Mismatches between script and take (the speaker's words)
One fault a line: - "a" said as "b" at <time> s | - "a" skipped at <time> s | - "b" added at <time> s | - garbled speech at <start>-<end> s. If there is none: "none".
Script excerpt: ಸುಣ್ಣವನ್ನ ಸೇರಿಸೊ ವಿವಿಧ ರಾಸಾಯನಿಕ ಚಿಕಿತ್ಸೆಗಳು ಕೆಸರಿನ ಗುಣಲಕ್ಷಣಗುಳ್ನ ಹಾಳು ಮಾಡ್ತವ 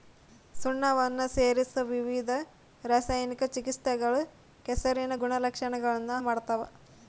- "ಹಾಳು" skipped at 6.1 s